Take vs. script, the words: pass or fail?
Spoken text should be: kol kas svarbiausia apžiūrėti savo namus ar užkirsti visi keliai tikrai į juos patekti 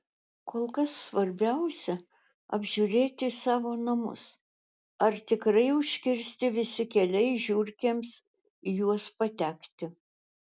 fail